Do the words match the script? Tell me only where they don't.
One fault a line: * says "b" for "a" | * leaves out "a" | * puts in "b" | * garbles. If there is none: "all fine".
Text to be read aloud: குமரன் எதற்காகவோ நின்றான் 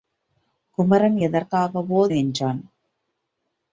all fine